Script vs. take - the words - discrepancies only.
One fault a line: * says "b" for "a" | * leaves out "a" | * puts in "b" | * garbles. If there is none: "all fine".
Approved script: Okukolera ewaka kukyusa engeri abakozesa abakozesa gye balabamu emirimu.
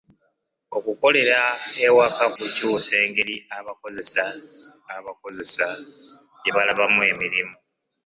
all fine